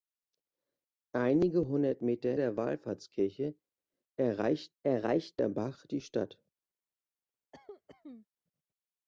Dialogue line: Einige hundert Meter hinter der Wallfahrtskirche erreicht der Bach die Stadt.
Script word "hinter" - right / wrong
wrong